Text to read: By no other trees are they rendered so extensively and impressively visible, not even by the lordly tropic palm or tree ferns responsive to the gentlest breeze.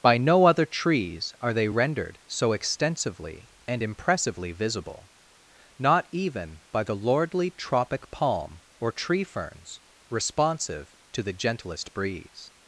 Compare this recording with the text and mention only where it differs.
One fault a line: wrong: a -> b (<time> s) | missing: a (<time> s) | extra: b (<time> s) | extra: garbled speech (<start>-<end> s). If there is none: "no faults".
no faults